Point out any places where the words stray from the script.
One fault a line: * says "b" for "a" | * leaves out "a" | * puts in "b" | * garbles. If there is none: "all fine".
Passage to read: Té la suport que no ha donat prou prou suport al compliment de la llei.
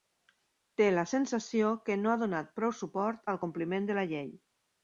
* says "sensació" for "suport"
* leaves out "prou"